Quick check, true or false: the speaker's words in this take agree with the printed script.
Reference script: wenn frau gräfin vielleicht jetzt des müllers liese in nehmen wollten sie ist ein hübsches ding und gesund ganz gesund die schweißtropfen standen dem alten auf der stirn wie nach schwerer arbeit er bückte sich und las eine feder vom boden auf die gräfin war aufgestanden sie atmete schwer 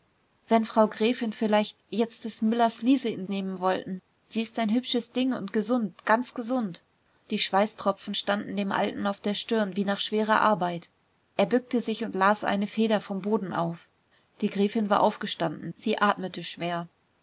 true